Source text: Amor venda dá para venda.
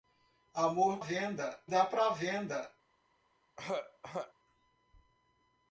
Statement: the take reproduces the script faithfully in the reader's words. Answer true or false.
true